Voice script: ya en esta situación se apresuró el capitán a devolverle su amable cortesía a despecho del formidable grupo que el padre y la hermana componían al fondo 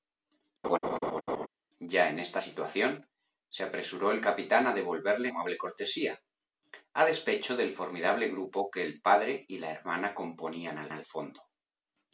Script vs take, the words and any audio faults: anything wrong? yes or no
yes